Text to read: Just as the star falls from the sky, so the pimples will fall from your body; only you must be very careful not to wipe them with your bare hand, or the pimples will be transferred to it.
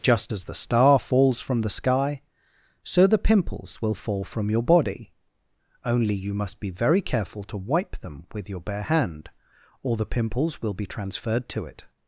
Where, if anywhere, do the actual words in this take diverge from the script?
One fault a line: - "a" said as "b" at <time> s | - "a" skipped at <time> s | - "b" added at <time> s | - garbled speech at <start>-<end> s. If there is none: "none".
- "not" skipped at 7.4 s